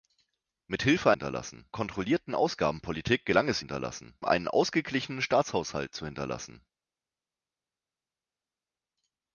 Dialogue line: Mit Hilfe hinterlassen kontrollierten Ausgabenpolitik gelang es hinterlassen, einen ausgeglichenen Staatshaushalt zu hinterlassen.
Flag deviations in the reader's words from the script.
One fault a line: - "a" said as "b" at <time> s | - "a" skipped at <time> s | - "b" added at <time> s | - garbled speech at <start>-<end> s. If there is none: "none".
none